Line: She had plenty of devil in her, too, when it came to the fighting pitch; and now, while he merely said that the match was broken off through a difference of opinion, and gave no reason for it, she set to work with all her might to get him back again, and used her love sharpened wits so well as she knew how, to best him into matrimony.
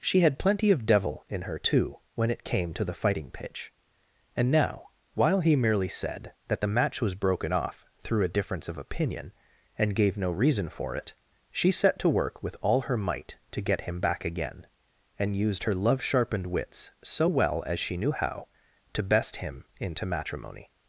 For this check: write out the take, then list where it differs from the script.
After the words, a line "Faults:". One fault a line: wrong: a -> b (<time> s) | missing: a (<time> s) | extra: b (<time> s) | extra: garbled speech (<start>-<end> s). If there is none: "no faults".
She had plenty of devil in her, too, when it came to the fighting pitch; and now, while he merely said that the match was broken off through a difference of opinion, and gave no reason for it, she set to work with all her might to get him back again, and used her love sharpened wits so well as she knew how, to best him into matrimony.
Faults:
no faults